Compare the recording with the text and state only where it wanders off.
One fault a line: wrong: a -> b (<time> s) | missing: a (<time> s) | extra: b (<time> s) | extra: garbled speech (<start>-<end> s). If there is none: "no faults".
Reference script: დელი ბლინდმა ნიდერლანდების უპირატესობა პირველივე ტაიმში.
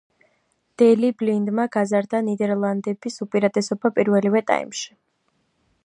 extra: გაზარდა (1.7 s)